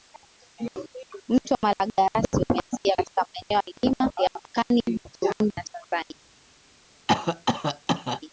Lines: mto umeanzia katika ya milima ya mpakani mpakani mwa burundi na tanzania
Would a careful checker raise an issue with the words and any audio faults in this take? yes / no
yes